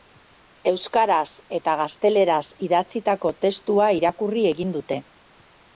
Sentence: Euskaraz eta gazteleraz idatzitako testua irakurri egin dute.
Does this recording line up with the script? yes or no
yes